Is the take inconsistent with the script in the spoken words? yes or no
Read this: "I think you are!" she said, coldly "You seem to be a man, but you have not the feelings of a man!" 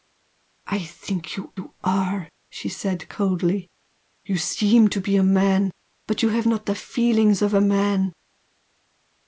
yes